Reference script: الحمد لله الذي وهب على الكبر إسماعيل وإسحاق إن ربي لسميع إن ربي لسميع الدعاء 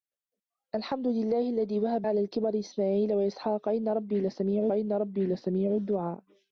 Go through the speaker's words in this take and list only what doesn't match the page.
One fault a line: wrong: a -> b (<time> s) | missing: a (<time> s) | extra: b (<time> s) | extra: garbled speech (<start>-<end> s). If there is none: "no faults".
no faults